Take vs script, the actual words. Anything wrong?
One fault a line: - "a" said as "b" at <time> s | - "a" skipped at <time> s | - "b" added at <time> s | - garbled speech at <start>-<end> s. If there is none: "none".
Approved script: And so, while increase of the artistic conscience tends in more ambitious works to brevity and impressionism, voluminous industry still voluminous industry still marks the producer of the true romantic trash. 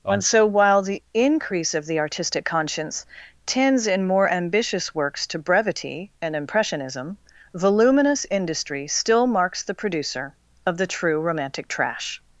- "the" added at 0.8 s
- "voluminous industry still" skipped at 9.3 s